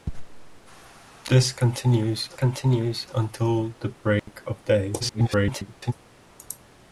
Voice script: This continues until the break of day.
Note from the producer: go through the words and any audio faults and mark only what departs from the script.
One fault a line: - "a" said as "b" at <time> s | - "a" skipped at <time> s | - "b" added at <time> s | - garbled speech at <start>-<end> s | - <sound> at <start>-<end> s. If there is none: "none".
- "continues" added at 2.3 s
- dropout at 4.2-4.3 s
- garbled speech at 5.0-5.9 s